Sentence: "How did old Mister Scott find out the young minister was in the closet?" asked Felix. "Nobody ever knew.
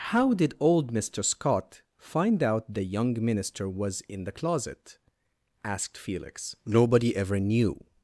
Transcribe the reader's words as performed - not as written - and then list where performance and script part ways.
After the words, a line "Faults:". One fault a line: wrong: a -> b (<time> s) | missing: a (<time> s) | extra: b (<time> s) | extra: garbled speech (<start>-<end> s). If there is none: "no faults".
"How did old Mister Scott find out the young minister was in the closet?" asked Felix. "Nobody ever knew.
Faults:
no faults